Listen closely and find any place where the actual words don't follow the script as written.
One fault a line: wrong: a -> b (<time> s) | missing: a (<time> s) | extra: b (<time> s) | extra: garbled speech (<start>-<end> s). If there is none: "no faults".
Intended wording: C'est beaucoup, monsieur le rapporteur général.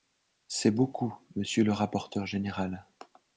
no faults